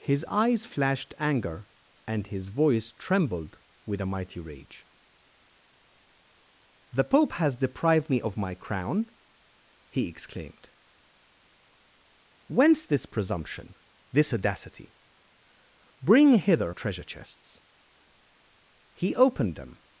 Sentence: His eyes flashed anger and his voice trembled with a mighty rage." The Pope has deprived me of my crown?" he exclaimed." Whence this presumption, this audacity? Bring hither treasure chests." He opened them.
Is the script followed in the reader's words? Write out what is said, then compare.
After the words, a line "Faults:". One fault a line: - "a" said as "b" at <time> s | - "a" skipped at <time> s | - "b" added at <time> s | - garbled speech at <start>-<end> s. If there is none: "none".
His eyes flashed anger and his voice trembled with a mighty rage." The Pope has deprived me of my crown?" he exclaimed." Whence this presumption, this audacity? Bring hither treasure chests." He opened them.
Faults:
none